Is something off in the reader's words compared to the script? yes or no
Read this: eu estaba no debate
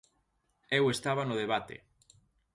no